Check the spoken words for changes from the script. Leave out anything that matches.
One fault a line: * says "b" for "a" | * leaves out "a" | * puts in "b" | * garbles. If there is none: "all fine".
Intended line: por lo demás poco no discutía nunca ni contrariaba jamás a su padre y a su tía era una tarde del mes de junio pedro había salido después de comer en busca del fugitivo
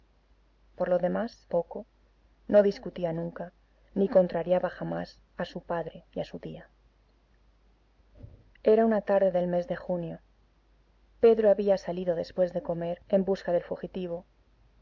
all fine